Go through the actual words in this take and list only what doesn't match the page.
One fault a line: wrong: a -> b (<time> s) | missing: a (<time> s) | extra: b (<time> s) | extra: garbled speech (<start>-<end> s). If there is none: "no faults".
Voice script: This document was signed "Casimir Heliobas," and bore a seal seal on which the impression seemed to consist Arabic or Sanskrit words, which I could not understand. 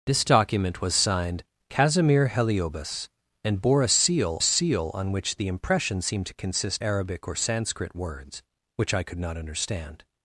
no faults